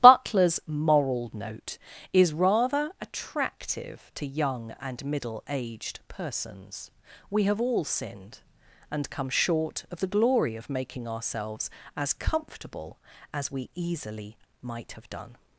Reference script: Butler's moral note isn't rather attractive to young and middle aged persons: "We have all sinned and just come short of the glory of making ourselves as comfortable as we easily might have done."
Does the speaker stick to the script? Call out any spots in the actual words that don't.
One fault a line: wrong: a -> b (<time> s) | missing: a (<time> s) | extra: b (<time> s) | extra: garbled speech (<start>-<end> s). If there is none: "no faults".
wrong: isn't -> is (2.1 s)
missing: just (9.1 s)